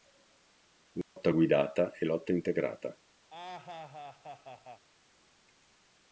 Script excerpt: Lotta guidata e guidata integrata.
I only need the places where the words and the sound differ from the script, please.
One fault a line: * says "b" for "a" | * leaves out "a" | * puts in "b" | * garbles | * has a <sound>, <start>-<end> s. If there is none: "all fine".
* has a dropout, 1.0-1.2 s
* says "lotta" for "guidata"
* has a laugh, 3.3-4.9 s